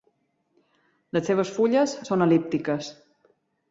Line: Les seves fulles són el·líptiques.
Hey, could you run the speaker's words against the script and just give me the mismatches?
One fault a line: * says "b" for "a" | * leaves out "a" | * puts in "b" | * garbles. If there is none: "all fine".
all fine